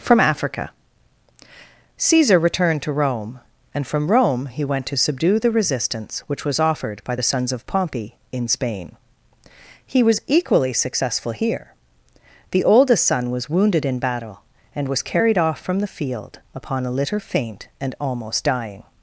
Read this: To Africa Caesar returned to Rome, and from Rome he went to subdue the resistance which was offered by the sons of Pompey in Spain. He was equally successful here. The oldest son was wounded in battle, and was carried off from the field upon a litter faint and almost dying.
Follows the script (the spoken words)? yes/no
no